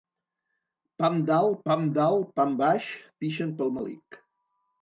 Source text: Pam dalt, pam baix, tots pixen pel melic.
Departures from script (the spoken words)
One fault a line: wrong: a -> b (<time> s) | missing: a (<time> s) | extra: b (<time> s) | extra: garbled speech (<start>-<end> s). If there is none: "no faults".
extra: dalt pam (1.9 s)
missing: tots (2.9 s)